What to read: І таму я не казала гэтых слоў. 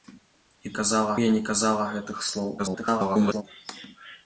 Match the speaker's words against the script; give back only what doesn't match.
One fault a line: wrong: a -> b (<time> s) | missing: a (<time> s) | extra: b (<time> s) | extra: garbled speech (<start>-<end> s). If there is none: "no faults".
wrong: таму -> казала (0.8 s)
extra: garbled speech (2.6-3.4 s)